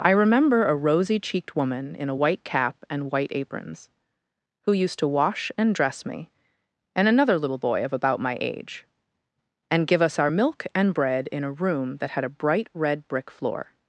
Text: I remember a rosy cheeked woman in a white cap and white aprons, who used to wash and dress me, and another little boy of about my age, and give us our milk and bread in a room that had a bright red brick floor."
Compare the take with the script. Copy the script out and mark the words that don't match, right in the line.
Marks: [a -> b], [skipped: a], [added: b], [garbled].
I remember a rosy cheeked woman in a white cap and white aprons, who used to wash and dress me, and another little boy of about my age, and give us our milk and bread in a room that had a bright red brick floor."